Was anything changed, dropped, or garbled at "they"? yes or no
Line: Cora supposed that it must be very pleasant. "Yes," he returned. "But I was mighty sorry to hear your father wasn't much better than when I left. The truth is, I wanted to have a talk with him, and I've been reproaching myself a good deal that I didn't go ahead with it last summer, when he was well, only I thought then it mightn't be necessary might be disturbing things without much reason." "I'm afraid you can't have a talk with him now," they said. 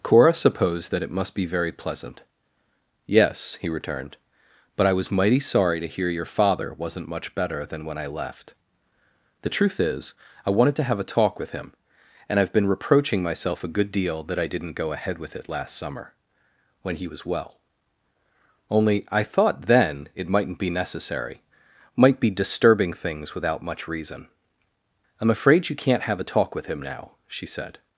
yes